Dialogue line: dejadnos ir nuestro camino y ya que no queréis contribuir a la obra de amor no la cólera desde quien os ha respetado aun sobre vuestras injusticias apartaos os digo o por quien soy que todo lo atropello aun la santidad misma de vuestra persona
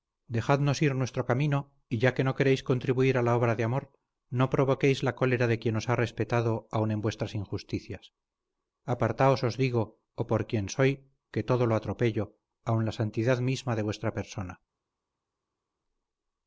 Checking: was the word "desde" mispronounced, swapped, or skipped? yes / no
yes